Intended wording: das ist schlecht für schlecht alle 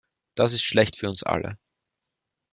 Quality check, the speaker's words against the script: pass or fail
fail